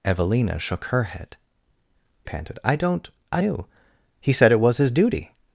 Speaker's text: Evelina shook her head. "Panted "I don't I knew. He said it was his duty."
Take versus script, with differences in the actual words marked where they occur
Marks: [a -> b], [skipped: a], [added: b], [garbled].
Evelina shook her head. "Panted "I don't I knew. He said it was his duty."